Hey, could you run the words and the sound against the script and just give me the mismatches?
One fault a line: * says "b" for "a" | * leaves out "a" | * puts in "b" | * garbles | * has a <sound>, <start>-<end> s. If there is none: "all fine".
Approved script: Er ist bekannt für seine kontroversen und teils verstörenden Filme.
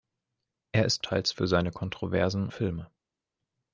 * says "teils" for "bekannt"
* leaves out "und teils verstörenden"